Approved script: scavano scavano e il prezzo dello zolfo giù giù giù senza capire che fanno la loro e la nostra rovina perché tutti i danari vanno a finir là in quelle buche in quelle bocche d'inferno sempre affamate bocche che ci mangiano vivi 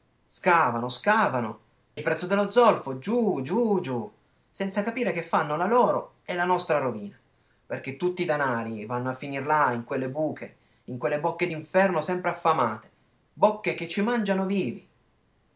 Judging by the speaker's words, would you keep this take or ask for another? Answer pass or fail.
fail